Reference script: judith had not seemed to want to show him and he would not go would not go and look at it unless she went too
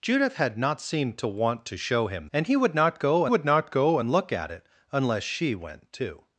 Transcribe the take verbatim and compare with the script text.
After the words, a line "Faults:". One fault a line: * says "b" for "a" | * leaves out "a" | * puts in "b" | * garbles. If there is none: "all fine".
judith had not seemed to want to show him and he would not go would not go and look at it unless she went too
Faults:
all fine